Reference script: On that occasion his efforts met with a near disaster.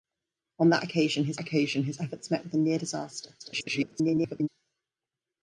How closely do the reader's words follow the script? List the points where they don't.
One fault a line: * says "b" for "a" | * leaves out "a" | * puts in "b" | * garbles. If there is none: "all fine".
* puts in "occasion his"
* garbles